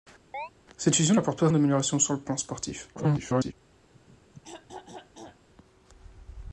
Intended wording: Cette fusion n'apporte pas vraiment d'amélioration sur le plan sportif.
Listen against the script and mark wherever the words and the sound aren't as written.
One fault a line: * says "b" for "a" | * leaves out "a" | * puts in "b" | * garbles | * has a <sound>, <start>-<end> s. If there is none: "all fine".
* has a chirp, 0.3-0.5 s
* leaves out "vraiment"
* garbles
* has a throat clearing, 3.9-5.5 s